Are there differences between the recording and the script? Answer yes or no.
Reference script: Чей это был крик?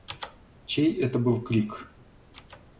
no